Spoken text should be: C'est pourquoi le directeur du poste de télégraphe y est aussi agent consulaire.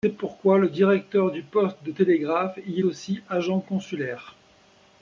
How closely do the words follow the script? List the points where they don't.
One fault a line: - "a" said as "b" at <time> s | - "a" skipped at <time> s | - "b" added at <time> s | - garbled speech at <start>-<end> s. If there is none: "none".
- "est" skipped at 2.8 s